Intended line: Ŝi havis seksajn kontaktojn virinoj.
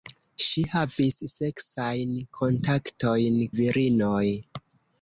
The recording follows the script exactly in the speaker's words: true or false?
true